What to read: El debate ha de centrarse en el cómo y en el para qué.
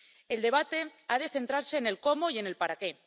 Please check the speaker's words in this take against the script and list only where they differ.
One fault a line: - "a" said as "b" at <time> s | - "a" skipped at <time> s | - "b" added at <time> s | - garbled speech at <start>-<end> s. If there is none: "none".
none